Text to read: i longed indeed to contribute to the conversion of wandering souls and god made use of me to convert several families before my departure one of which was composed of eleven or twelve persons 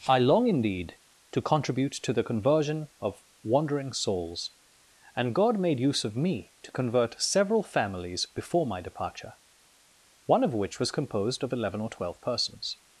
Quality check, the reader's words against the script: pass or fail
fail